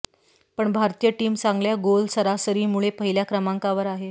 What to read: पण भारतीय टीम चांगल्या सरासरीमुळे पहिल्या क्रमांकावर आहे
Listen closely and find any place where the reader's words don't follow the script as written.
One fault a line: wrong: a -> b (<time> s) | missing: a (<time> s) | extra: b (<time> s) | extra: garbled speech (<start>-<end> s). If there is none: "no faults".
extra: गोल (1.8 s)